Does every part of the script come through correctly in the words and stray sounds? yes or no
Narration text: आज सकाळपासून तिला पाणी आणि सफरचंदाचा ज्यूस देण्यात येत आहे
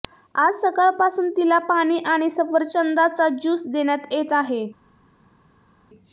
yes